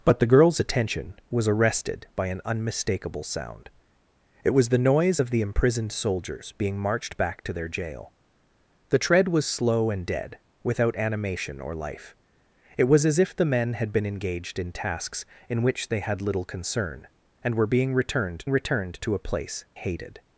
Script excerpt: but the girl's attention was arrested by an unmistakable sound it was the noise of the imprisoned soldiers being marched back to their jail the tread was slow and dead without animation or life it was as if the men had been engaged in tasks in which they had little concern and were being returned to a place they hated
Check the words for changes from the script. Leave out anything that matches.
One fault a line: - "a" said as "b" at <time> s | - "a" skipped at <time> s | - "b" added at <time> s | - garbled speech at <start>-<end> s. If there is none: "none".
- "returned" added at 18.5 s
- "they" skipped at 19.6 s